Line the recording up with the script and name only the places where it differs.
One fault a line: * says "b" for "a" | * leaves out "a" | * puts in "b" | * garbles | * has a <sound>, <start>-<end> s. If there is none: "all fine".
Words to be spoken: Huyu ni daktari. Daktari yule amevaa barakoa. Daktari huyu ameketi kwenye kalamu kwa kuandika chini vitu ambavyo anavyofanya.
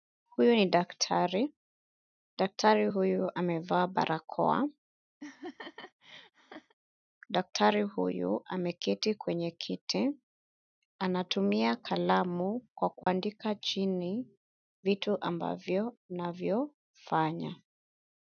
* says "huyu" for "yule"
* has a laugh, 5.2-6.7 s
* puts in "kiti Anatumia"
* has a dropout, 13.0-13.1 s